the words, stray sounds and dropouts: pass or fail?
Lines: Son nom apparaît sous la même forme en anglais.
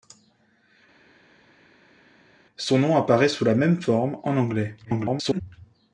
fail